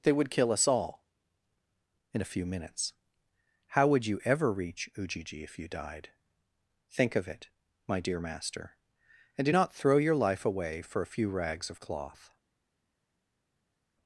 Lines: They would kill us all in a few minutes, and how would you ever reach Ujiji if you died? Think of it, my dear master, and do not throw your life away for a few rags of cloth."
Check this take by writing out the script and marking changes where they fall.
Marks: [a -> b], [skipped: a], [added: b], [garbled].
They would kill us all in a few minutes, [skipped: and] how would you ever reach Ujiji if you died? Think of it, my dear master, and do not throw your life away for a few rags of cloth."